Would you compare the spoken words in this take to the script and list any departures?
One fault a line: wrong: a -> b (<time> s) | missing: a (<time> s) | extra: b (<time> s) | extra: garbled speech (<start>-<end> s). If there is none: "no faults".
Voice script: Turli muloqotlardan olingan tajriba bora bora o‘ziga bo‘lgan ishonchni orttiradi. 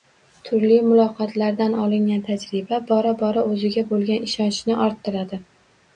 no faults